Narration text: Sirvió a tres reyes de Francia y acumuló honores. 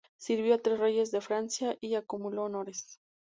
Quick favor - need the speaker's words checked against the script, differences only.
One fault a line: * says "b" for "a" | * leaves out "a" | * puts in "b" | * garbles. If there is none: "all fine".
all fine